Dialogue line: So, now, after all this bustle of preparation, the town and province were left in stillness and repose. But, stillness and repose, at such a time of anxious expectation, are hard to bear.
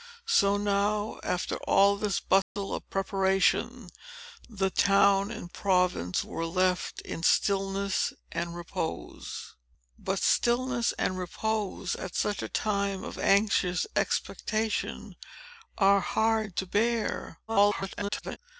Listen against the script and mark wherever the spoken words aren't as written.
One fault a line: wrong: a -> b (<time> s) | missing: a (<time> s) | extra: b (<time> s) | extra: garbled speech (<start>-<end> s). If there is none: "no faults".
extra: garbled speech (17.5-18.4 s)